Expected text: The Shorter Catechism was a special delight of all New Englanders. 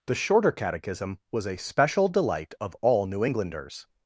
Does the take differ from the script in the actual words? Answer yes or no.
no